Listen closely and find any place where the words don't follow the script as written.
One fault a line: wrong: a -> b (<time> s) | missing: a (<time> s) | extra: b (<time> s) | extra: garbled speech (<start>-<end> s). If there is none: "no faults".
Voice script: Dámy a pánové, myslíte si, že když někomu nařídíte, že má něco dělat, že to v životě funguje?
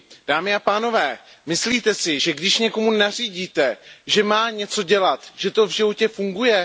no faults